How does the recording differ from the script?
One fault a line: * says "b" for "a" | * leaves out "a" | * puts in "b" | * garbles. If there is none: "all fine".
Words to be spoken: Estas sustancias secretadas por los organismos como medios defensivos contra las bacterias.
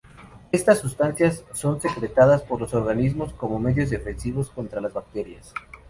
* puts in "son"